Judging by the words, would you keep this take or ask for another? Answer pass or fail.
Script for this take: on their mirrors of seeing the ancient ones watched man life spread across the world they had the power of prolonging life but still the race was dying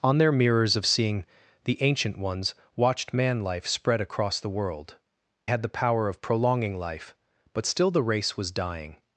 fail